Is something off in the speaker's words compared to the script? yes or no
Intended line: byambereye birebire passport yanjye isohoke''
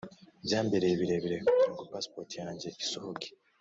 yes